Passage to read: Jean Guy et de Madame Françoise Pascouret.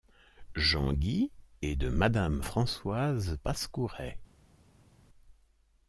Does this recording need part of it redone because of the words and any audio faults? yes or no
no